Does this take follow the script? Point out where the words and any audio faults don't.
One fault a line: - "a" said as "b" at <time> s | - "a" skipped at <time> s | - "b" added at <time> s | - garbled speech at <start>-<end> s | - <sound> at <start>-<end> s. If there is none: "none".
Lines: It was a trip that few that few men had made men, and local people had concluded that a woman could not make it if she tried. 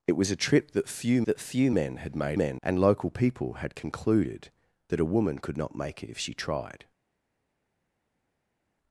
none